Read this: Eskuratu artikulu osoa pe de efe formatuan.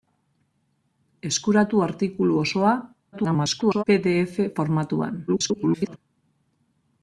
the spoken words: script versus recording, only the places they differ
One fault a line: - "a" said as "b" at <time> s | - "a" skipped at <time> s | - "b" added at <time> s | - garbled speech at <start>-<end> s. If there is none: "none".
- garbled speech at 3.1-3.8 s
- garbled speech at 5.3-6.0 s